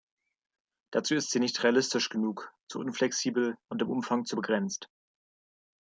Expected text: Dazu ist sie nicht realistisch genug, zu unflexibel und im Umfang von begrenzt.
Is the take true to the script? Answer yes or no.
no